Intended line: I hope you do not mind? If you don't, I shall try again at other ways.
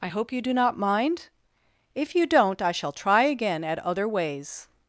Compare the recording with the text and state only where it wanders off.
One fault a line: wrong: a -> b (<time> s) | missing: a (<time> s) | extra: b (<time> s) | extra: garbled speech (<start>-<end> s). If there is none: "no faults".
no faults